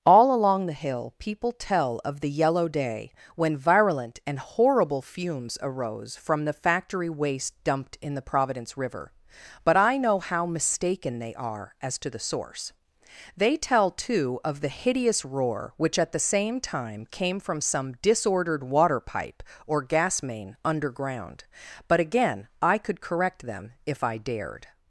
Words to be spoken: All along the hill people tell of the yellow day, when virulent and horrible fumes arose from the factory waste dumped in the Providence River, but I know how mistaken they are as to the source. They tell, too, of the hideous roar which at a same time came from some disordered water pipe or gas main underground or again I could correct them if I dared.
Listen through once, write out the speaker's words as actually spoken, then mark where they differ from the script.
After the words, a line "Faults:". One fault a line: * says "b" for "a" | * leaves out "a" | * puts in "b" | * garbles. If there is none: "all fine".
All along the hill people tell of the yellow day, when virulent and horrible fumes arose from the factory waste dumped in the Providence River, but I know how mistaken they are as to the source. They tell, too, of the hideous roar which at the same time came from some disordered water pipe or gas main underground but again I could correct them if I dared.
Faults:
* says "the" for "a"
* says "but" for "or"